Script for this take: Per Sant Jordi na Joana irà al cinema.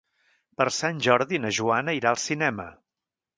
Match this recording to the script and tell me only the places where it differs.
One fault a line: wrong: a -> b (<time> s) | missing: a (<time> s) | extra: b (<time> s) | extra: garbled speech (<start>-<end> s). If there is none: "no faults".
no faults